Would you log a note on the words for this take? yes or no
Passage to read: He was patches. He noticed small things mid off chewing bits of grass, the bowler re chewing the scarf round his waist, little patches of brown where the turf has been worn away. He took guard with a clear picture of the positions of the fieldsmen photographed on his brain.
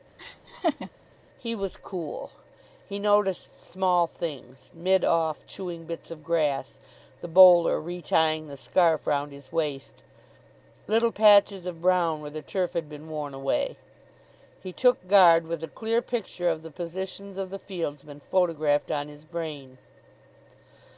yes